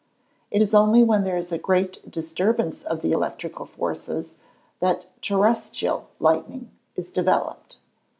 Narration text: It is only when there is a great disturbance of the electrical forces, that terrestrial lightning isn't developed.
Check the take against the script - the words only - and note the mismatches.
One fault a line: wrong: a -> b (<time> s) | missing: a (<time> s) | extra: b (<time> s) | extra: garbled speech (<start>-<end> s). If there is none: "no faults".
wrong: isn't -> is (7.0 s)